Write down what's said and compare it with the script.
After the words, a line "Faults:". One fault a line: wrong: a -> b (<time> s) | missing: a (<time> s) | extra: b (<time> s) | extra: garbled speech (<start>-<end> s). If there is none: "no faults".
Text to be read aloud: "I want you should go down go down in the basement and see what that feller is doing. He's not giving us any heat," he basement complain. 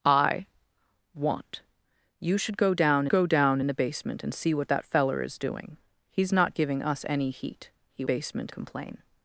"I want you should go down go down in the basement and see what that feller is doing. He's not giving us any heat," he basement complain.
Faults:
no faults